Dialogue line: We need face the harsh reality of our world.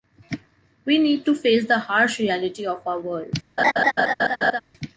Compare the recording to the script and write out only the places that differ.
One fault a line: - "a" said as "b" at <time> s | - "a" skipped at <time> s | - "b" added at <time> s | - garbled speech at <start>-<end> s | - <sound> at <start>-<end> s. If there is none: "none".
- "to" added at 1.2 s
- laugh at 3.6-4.6 s